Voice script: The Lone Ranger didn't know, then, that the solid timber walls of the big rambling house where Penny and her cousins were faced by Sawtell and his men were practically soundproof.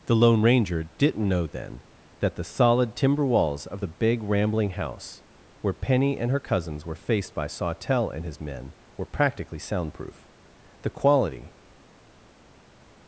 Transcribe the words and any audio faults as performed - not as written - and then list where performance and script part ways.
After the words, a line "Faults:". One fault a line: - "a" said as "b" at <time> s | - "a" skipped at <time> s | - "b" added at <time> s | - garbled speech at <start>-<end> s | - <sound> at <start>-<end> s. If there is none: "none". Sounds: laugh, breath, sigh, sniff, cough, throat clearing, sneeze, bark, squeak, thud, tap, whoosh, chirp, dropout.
The Lone Ranger didn't know, then, that the solid timber walls of the big rambling house where Penny and her cousins were faced by Sawtell and his men were practically soundproof. The quality
Faults:
- "The quality" added at 10.8 s